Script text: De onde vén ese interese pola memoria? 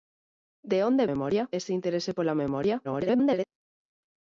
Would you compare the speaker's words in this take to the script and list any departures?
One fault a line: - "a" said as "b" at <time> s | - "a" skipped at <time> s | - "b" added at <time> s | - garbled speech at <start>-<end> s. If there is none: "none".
- "vén" said as "memoria" at 1.1 s
- garbled speech at 2.8-3.5 s